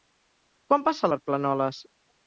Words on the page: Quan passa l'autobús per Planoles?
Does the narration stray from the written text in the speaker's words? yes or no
yes